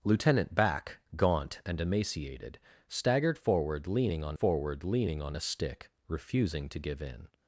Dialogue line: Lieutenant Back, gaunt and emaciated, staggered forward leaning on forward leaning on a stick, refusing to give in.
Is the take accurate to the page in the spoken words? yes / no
yes